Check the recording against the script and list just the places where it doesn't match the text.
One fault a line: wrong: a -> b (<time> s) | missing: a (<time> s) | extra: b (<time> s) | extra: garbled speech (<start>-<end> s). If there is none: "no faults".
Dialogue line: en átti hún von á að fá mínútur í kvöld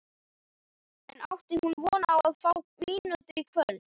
no faults